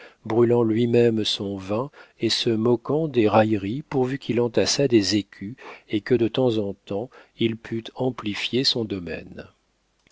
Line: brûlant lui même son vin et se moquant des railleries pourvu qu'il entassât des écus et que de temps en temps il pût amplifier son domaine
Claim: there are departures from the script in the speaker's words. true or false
false